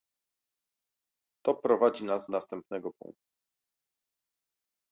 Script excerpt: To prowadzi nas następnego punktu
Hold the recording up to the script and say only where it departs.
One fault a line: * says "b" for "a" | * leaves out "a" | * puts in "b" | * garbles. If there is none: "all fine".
all fine